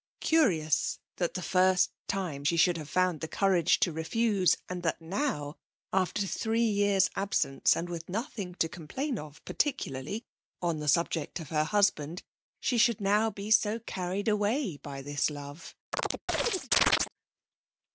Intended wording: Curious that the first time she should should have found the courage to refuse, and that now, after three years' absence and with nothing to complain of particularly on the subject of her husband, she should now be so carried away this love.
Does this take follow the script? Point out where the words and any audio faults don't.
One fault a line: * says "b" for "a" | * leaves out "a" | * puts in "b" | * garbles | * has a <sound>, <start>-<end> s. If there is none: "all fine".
* leaves out "should"
* puts in "by"
* has a chirp, 15.9-17.1 s